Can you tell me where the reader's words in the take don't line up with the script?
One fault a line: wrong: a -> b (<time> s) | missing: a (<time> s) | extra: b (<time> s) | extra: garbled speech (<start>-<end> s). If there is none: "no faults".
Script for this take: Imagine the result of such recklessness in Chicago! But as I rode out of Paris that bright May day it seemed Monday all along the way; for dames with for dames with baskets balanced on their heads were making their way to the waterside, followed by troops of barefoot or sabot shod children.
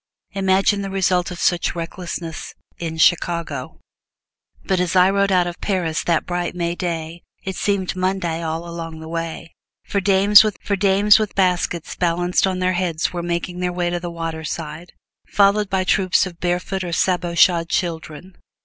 no faults